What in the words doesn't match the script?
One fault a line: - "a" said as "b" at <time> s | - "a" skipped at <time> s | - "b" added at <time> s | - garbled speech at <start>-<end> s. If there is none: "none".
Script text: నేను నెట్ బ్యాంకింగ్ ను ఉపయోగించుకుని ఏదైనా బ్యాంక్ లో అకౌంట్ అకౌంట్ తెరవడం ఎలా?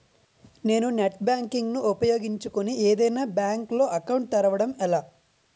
- "అకౌంట్" skipped at 4.3 s